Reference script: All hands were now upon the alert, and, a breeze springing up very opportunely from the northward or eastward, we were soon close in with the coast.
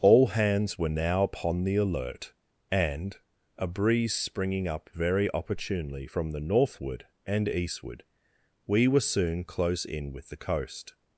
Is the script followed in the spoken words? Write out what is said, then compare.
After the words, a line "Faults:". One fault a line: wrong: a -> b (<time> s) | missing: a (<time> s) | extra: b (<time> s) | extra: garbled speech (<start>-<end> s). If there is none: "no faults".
All hands were now upon the alert, and, a breeze springing up very opportunely from the northward and eastward, we were soon close in with the coast.
Faults:
wrong: or -> and (7.3 s)